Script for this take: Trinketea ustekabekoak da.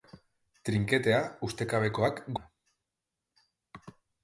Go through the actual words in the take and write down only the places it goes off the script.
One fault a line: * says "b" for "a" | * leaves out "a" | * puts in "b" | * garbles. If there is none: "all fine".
all fine